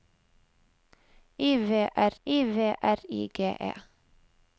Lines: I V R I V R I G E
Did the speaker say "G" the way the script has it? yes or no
yes